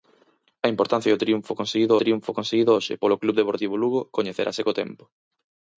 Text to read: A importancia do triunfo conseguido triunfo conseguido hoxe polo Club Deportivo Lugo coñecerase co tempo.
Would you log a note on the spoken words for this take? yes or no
no